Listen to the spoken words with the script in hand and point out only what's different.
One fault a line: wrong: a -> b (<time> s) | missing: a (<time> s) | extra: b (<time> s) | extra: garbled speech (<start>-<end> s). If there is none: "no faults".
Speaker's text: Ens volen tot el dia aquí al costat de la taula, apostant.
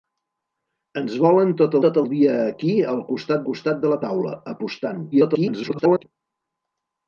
extra: tot (1.8 s)
extra: costat (3.5 s)
extra: garbled speech (5.1-6.0 s)